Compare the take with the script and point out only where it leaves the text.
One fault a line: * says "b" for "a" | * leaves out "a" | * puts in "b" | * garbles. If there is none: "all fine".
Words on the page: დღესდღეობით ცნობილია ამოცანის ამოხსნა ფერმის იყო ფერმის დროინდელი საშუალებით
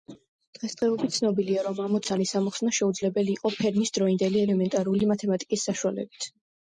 * puts in "რომ"
* says "შეუძლებელი" for "ფერმის"
* puts in "ელემენტარული მათემატიკის"